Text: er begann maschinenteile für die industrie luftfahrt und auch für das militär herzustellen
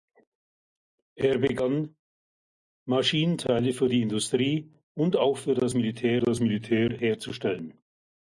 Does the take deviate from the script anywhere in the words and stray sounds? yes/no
yes